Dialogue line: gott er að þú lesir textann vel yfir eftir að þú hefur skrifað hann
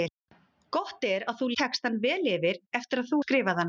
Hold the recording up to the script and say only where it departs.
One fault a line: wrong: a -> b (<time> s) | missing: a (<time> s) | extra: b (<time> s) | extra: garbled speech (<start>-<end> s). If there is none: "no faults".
missing: lesir (1.5 s)
missing: hefur (3.2 s)